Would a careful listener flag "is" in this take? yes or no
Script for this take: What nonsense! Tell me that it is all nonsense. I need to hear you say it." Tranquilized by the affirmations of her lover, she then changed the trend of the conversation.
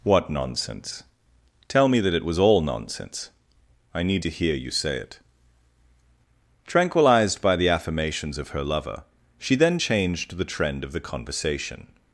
yes